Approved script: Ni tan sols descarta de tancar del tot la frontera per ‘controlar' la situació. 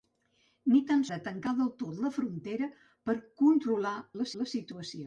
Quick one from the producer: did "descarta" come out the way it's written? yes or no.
no